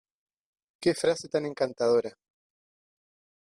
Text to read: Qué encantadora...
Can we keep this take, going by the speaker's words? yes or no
no